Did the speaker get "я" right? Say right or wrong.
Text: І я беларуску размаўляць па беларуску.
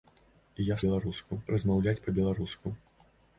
right